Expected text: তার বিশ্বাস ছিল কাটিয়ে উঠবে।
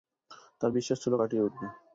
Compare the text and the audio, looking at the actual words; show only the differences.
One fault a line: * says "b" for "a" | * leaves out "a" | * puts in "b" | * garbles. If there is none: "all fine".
all fine